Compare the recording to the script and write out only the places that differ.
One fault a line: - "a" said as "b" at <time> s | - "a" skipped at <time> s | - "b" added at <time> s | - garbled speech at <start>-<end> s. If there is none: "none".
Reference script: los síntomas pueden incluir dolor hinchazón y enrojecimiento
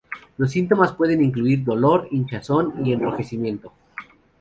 none